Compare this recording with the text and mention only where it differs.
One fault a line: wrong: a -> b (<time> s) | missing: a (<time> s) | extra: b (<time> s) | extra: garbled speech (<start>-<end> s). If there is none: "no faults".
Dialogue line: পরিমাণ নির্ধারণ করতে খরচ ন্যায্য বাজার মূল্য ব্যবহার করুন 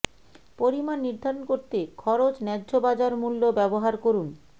no faults